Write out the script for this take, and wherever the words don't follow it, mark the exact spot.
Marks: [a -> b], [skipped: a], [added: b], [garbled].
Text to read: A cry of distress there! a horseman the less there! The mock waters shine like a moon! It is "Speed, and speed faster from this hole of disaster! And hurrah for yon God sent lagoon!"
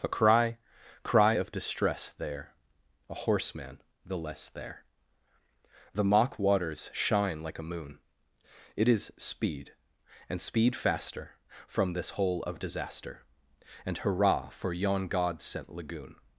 A cry [added: cry] of distress there! a horseman the less there! The mock waters shine like a moon! It is "Speed, and speed faster from this hole of disaster! And hurrah for yon God sent lagoon!"